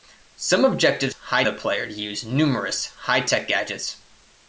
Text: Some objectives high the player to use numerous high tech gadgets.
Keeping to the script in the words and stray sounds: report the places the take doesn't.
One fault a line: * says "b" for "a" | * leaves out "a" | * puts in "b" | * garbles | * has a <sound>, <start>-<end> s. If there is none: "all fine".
all fine